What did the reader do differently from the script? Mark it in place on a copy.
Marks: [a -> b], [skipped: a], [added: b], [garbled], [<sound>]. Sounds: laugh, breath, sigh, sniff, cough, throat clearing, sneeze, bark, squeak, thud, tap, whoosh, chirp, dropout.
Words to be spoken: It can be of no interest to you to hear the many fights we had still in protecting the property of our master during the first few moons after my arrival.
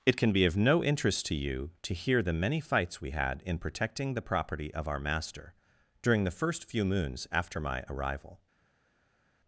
It can be of no interest to you to hear the many fights we had [skipped: still] in protecting the property of our master during the first few moons after my arrival.